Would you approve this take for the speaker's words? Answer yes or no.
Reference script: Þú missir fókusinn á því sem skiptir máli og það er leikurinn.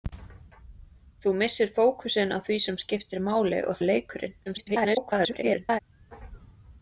no